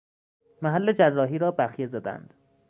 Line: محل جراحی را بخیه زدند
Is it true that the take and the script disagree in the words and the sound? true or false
false